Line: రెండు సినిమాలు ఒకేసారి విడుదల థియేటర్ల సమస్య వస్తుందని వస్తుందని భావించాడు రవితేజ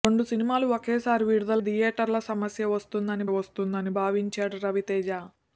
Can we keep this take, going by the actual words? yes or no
yes